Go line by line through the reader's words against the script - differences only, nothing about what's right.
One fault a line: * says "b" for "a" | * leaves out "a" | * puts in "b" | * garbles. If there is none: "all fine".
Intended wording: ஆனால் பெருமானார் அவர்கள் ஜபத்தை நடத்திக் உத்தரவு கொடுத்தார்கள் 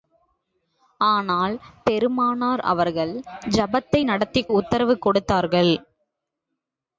all fine